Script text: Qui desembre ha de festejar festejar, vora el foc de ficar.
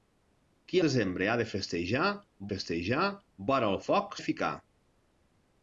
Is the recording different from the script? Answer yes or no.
no